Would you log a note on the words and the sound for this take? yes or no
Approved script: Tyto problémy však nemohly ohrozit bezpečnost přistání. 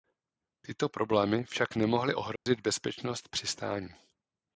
yes